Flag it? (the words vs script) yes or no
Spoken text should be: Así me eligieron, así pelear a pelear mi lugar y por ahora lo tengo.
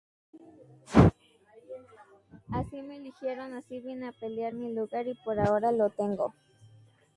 yes